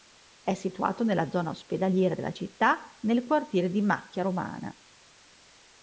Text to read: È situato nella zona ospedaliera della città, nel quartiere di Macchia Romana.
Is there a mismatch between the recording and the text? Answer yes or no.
no